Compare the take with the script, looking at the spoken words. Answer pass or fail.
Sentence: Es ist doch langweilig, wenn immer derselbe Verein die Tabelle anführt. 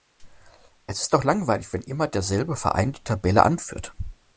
pass